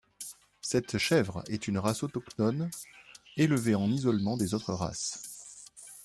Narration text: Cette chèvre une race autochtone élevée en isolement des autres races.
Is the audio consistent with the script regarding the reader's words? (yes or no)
no